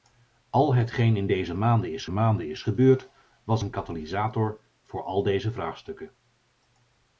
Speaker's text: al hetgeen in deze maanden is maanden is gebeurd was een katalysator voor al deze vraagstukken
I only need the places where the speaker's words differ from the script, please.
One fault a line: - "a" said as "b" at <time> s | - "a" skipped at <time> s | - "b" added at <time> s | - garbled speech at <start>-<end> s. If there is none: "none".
none